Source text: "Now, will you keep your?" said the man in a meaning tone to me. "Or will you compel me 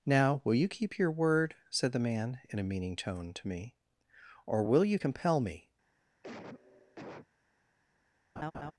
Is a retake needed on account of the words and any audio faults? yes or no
yes